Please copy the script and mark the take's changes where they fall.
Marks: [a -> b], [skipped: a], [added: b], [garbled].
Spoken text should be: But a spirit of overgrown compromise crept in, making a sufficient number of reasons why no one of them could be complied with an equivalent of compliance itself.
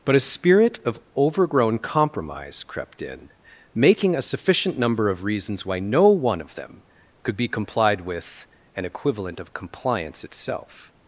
But a spirit of overgrown compromise crept in, making a sufficient number of reasons why no one of them could be complied with an equivalent of compliance itself.